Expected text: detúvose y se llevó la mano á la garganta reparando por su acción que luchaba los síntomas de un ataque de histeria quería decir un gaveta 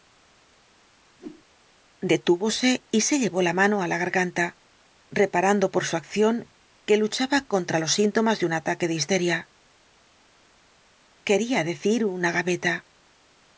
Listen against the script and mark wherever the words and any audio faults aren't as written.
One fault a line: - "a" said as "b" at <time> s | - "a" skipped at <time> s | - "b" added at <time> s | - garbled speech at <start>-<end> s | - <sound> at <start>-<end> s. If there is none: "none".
- whoosh at 1.2-1.5 s
- "contra" added at 7.5 s
- "un" said as "una" at 12.2 s